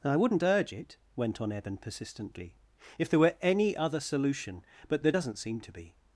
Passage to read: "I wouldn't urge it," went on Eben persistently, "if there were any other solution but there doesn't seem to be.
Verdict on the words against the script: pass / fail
pass